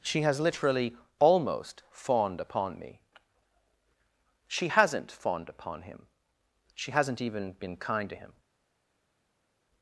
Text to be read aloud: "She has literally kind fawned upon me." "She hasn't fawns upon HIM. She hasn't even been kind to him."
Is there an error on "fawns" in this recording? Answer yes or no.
yes